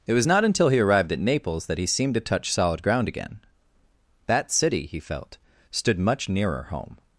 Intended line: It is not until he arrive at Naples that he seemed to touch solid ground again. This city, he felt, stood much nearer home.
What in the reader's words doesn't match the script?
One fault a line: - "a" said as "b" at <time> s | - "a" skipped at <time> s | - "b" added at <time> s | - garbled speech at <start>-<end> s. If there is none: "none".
- "is" said as "was" at 0.1 s
- "arrive" said as "arrived" at 0.8 s
- "This" said as "That" at 4.3 s